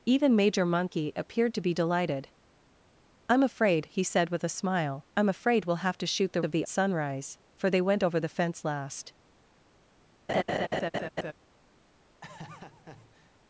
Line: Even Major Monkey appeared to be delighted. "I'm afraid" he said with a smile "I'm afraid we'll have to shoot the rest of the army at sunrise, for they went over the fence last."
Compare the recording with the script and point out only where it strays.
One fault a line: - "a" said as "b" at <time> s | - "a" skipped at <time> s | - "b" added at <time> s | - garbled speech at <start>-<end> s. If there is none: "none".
- "rest" skipped at 6.4 s
- "army at" skipped at 6.6 s